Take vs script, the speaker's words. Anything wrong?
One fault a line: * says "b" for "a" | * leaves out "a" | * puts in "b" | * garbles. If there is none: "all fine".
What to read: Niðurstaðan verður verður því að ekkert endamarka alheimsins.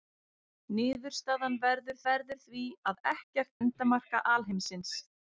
all fine